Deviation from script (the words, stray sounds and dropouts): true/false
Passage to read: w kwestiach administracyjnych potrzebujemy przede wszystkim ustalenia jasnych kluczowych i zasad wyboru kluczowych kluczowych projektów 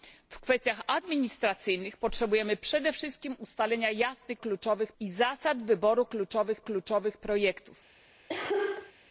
true